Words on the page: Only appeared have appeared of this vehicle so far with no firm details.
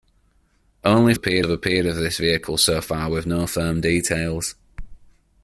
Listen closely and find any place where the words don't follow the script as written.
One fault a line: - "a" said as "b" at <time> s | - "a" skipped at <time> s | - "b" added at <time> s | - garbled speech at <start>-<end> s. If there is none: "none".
none